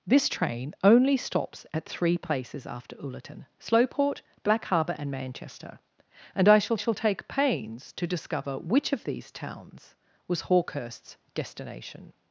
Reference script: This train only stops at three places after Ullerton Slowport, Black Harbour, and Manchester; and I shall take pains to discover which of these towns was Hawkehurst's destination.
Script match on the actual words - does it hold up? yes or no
no